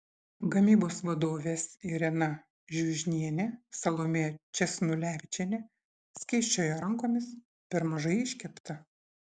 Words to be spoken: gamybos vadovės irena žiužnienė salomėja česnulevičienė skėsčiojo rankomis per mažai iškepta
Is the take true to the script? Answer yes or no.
yes